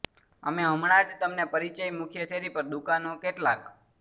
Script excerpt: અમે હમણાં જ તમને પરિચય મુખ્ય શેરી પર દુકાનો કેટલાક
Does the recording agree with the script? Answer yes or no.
yes